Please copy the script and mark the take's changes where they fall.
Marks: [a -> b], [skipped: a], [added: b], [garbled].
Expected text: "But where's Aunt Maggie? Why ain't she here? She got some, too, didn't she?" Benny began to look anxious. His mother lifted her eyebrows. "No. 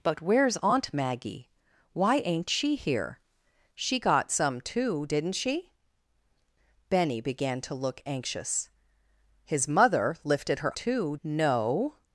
"But where's Aunt Maggie? Why ain't she here? She got some, too, didn't she?" Benny began to look anxious. His mother lifted her [eyebrows. -> too] "No.